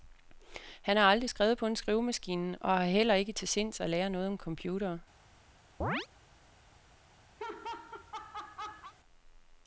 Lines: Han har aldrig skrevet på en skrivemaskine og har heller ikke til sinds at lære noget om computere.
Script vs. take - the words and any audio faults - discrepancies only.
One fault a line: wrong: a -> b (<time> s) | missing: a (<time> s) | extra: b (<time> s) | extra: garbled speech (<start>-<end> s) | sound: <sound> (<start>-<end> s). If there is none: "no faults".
sound: chirp (5.8-6.1 s)
sound: laugh (7.4-8.9 s)